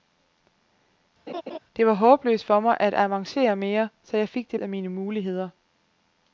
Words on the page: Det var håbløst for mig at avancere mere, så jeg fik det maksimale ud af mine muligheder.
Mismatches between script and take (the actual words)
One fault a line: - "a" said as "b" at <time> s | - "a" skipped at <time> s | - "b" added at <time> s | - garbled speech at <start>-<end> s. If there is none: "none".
- "maksimale ud" skipped at 4.6 s